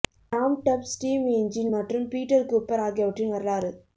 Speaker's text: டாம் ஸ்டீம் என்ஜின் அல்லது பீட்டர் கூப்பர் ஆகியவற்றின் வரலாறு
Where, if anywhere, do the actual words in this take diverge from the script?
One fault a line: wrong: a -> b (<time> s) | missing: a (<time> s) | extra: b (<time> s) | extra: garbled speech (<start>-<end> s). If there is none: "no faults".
extra: டப் (0.6 s)
wrong: அல்லது -> மற்றும் (1.7 s)